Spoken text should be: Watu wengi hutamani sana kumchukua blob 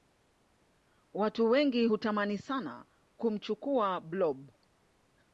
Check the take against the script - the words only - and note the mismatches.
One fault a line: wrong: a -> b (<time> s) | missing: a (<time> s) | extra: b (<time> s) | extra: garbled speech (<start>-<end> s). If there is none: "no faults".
no faults